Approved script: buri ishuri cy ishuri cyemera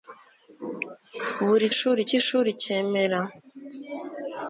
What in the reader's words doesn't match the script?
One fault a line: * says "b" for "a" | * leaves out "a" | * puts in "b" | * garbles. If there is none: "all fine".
all fine